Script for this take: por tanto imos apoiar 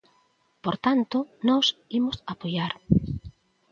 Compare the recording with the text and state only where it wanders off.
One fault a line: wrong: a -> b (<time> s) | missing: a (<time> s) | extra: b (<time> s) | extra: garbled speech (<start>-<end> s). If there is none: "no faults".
extra: nós (1.5 s)